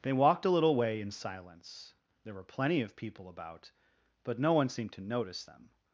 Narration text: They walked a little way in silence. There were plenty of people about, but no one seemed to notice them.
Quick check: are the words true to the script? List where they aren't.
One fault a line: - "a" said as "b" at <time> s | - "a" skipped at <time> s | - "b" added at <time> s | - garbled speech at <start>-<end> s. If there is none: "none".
none